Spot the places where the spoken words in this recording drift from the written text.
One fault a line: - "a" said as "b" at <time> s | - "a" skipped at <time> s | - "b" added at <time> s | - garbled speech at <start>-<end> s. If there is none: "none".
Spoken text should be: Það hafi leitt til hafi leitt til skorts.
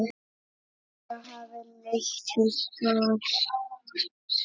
- "hafi leitt til" skipped at 2.5 s